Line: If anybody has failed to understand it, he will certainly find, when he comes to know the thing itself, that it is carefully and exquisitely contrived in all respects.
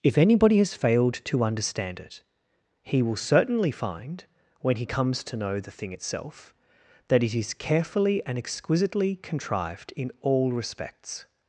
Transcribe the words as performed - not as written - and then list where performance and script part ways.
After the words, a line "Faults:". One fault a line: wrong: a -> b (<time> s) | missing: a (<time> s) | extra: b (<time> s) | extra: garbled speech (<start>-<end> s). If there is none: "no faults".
If anybody has failed to understand it, he will certainly find, when he comes to know the thing itself, that it is carefully and exquisitely contrived in all respects.
Faults:
no faults